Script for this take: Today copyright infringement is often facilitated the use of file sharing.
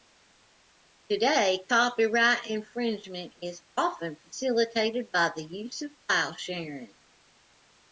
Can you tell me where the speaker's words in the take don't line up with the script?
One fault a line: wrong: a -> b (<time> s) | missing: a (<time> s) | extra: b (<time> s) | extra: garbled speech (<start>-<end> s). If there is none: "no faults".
extra: by (5.1 s)